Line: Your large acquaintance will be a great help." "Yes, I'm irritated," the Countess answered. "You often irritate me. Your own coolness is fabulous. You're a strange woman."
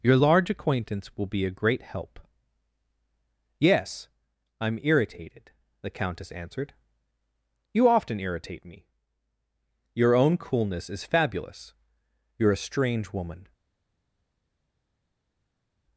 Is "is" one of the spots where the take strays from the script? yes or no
no